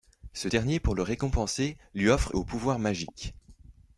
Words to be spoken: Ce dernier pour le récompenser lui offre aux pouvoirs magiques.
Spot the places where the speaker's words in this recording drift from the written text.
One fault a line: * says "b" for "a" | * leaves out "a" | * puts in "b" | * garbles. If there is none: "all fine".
all fine